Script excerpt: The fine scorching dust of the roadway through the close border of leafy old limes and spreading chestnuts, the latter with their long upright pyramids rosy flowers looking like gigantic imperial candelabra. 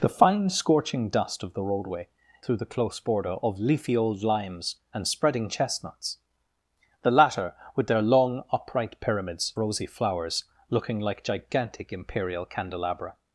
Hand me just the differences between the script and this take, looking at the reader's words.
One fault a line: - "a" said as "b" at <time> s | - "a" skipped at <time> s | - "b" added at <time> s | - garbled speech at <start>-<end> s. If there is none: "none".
none